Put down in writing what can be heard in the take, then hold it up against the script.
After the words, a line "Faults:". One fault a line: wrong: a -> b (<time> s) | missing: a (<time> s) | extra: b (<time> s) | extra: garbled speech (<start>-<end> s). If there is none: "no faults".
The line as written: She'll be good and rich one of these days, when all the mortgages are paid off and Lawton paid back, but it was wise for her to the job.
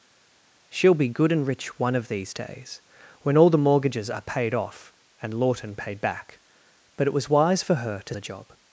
She'll be good and rich one of these days, when all the mortgages are paid off and Lawton paid back, but it was wise for her to the job.
Faults:
no faults